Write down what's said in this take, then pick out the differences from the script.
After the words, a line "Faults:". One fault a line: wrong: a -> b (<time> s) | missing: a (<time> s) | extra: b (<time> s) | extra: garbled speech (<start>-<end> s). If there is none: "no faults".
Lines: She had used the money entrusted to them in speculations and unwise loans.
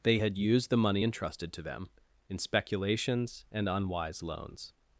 They had used the money entrusted to them in speculations and unwise loans.
Faults:
wrong: She -> They (0.0 s)